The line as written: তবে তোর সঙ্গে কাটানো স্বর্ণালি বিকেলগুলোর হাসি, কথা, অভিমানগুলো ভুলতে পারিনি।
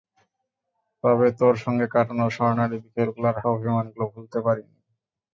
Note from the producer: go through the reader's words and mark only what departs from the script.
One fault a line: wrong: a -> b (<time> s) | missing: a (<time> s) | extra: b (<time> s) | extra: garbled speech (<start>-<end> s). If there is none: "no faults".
missing: হাসি কথা (3.4 s)